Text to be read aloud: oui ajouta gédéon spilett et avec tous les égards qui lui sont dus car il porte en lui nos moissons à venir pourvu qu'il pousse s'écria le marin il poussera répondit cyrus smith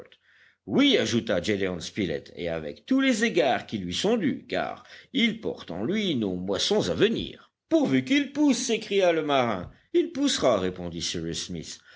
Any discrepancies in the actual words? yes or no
no